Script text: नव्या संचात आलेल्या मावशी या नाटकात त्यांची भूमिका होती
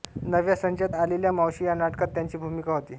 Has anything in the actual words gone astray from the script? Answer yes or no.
no